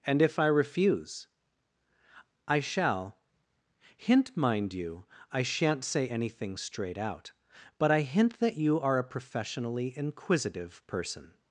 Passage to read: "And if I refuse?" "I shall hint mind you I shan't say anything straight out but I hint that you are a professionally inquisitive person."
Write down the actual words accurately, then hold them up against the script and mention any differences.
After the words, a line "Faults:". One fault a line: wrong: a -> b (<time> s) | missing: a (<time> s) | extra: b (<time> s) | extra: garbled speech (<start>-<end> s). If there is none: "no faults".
"And if I refuse?" "I shall hint mind you I shan't say anything straight out but I hint that you are a professionally inquisitive person."
Faults:
no faults